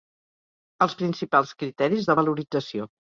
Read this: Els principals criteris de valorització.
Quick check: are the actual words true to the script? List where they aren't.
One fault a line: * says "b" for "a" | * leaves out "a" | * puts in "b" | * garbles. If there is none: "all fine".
all fine